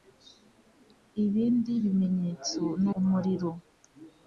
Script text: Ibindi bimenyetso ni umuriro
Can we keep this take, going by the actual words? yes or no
yes